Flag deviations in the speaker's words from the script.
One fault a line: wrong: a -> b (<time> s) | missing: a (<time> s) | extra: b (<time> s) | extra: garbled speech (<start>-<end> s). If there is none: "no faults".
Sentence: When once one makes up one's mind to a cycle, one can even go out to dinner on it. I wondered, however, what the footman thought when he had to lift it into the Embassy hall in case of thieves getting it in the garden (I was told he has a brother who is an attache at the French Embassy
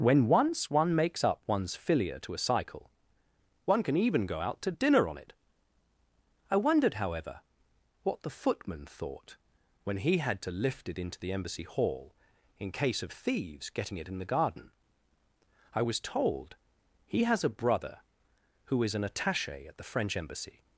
wrong: mind -> filia (1.8 s)